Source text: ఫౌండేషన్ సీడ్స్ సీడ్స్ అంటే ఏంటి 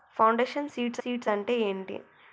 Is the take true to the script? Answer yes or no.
yes